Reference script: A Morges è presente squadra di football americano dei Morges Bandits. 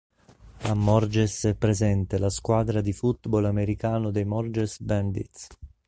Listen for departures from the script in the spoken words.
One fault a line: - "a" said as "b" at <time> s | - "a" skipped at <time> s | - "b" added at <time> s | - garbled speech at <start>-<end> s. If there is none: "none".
- "la" added at 2.2 s